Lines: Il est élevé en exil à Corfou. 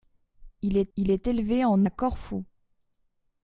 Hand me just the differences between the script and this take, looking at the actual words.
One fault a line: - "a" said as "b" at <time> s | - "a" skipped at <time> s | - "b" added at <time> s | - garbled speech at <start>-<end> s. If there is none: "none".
- "il est" added at 1.0 s
- "exil" skipped at 1.8 s